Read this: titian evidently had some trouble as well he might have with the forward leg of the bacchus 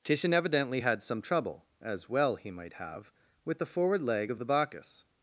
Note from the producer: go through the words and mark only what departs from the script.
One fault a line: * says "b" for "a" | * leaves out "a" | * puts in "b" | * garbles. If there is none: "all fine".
all fine